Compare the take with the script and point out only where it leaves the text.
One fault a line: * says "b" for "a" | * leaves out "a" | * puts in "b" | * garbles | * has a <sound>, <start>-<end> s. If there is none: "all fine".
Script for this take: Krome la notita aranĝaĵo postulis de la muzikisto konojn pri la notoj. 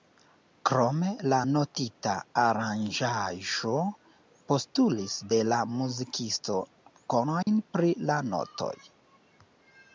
* has a dropout, 7.4-7.5 s